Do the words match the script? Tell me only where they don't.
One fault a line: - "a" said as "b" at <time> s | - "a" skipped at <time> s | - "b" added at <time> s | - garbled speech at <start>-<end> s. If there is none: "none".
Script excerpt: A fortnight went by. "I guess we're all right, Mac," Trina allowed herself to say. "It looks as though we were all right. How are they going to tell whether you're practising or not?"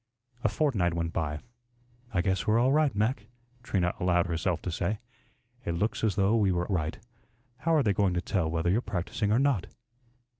- "all" skipped at 6.7 s